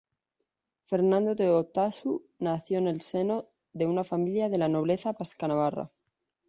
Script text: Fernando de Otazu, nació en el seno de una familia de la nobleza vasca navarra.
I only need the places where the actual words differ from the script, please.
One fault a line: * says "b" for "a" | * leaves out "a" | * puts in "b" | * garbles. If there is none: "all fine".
all fine